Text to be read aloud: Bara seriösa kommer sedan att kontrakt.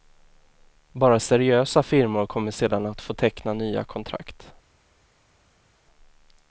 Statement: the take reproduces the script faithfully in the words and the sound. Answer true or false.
false